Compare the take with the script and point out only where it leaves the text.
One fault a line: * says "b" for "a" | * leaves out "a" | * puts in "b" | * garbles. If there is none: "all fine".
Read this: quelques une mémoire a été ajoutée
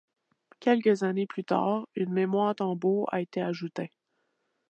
* puts in "années plus tard"
* puts in "tambour"